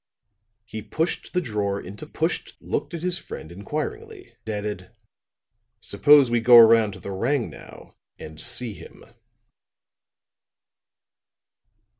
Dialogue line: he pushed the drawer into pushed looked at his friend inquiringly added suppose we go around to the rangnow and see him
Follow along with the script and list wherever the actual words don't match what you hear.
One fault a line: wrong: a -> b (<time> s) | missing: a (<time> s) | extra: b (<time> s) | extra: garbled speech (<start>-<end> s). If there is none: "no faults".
no faults